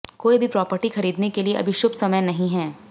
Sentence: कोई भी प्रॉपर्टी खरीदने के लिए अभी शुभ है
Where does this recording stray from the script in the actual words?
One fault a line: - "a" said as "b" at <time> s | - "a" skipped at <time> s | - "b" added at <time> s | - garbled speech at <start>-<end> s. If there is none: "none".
- "समय नहीं" added at 1.9 s